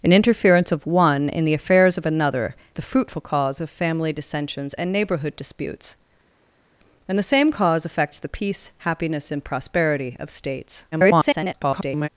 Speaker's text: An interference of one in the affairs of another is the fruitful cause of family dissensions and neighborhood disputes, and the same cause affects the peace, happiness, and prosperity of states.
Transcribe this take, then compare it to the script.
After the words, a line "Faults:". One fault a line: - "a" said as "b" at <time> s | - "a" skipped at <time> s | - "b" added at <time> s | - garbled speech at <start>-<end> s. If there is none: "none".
An interference of one in the affairs of another the fruitful cause of family dissensions and neighborhood disputes, and the same cause affects the peace, happiness, and prosperity of states. [garbled]
Faults:
- "is" skipped at 2.5 s
- garbled speech at 10.9-12.1 s